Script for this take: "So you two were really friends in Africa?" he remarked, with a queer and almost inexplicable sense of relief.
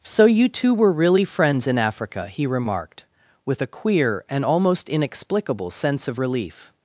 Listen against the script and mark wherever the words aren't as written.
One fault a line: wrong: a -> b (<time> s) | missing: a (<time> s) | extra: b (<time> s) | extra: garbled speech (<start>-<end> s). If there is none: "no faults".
no faults